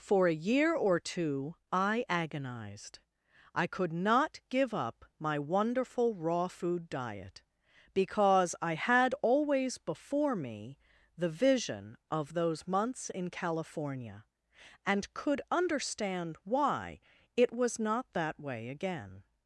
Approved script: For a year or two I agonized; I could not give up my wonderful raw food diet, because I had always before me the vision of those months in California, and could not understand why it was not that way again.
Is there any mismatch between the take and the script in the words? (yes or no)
yes